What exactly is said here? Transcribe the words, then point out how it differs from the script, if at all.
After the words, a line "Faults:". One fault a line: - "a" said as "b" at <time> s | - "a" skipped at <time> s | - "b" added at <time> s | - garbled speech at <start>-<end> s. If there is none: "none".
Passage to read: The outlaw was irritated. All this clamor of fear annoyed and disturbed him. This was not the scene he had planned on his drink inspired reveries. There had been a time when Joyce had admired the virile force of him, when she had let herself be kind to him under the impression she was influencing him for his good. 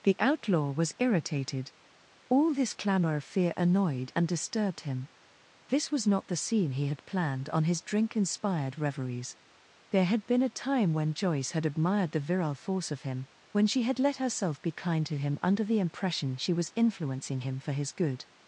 The outlaw was irritated. All this clamor of fear annoyed and disturbed him. This was not the scene he had planned on his drink inspired reveries. There had been a time when Joyce had admired the virile force of him, when she had let herself be kind to him under the impression she was influencing him for his good.
Faults:
none